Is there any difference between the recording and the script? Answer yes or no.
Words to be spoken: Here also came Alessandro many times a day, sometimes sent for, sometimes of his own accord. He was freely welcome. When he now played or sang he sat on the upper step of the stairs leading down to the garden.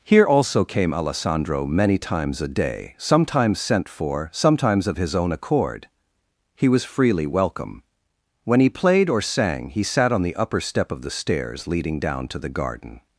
yes